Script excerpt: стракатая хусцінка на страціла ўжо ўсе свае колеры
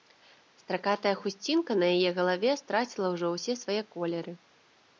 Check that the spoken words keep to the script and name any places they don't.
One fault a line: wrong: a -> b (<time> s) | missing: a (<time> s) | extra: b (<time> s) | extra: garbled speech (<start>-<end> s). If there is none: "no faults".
extra: яе галаве (2.0 s)